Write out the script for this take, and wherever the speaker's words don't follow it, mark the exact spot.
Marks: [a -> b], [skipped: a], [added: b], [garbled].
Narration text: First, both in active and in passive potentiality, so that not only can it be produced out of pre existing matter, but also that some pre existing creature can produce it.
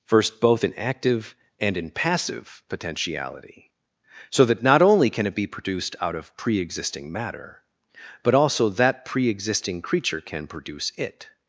First, both in active and in passive potentiality, so that not only can it be produced out of pre existing matter, but also that [skipped: some] pre existing creature can produce it.